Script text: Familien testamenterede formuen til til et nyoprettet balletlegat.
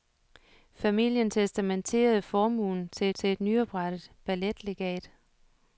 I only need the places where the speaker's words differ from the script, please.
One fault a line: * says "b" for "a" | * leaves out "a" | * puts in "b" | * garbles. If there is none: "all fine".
all fine